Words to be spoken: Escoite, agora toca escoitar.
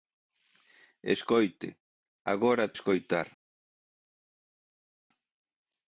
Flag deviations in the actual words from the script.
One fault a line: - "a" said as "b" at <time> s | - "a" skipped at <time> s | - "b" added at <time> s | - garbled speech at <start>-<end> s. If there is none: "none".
- "toca" skipped at 2.7 s